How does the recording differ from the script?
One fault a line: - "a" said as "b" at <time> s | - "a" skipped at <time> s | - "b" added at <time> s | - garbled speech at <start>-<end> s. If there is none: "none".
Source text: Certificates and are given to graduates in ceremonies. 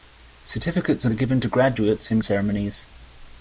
none